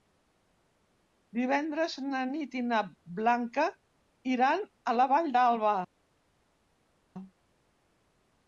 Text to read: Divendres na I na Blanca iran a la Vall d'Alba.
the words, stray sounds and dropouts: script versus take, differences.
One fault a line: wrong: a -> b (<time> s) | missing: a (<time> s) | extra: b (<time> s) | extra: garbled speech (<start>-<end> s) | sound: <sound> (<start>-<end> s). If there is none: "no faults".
extra: Nit (2.3 s)